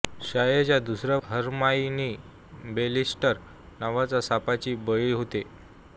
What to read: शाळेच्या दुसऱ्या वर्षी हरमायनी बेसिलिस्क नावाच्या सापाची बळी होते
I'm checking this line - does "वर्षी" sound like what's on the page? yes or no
no